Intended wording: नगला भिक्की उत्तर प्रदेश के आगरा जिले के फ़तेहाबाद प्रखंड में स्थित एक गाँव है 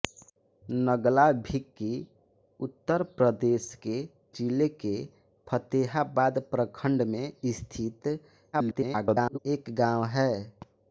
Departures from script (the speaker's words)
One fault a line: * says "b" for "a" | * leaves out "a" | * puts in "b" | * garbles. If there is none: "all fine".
* leaves out "आगरा"
* garbles